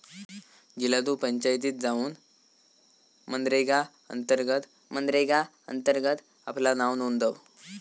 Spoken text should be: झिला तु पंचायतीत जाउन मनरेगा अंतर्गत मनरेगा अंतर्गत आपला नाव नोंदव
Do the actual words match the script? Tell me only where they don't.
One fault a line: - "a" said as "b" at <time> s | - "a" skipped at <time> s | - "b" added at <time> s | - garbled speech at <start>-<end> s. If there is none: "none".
none